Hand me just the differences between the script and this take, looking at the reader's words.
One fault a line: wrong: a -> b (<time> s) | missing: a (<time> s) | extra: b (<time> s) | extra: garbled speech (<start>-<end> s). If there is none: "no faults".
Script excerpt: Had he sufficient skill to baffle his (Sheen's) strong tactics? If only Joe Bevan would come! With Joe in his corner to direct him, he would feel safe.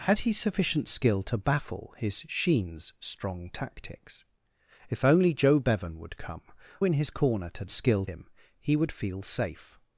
missing: With Joe (6.4 s)
wrong: direct -> skill (7.7 s)